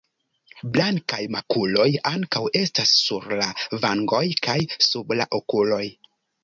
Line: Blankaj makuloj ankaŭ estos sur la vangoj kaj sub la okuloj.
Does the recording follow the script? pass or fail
fail